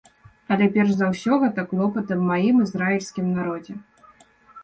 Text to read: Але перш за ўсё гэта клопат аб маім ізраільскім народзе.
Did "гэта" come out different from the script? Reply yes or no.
no